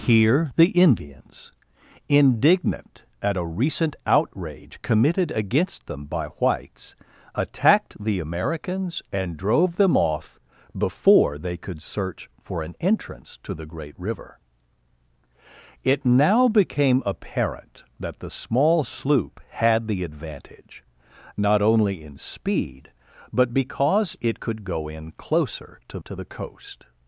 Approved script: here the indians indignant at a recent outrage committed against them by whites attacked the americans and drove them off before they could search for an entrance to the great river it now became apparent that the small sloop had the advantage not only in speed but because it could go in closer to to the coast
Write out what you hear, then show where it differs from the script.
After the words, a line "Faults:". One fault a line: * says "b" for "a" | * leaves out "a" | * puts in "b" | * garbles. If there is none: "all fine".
here the indians indignant at a recent outrage committed against them by whites attacked the americans and drove them off before they could search for an entrance to the great river it now became apparent that the small sloop had the advantage not only in speed but because it could go in closer to to the coast
Faults:
all fine